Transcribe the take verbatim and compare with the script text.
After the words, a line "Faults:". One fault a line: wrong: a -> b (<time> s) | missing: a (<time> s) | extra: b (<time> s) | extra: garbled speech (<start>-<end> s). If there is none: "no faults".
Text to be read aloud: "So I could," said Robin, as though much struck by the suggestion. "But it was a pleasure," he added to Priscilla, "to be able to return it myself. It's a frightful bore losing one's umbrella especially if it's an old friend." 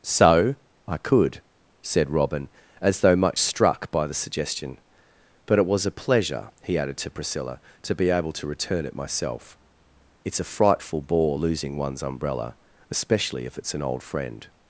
"So I could," said Robin, as though much struck by the suggestion. "But it was a pleasure," he added to Priscilla, "to be able to return it myself. It's a frightful bore losing one's umbrella especially if it's an old friend."
Faults:
no faults